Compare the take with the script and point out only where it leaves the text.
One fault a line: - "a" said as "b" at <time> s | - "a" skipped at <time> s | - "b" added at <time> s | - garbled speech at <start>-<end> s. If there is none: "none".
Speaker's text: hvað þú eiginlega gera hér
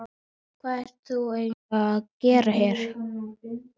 - "ert" added at 0.8 s
- "að" added at 1.9 s